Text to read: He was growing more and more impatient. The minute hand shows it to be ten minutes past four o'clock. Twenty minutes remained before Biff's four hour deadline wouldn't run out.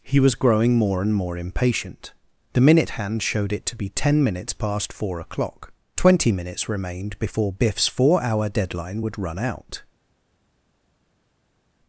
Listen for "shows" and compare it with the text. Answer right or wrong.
wrong